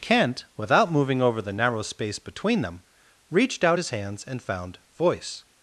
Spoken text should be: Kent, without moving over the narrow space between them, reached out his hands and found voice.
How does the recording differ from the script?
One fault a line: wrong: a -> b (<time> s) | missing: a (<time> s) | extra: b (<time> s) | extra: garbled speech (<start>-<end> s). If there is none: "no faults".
no faults